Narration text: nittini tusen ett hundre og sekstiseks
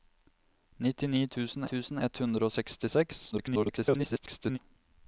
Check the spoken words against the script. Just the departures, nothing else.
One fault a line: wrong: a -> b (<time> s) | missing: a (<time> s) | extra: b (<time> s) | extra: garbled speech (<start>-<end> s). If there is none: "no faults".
extra: tusen (1.7 s)
extra: garbled speech (3.3-4.6 s)